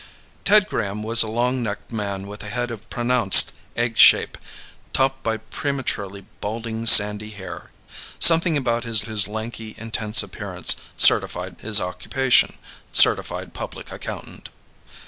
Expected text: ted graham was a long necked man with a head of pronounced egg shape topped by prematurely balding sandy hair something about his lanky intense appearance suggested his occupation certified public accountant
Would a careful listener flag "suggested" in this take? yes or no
yes